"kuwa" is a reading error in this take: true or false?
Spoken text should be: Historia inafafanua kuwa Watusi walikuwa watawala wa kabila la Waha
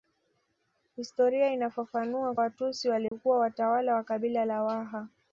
true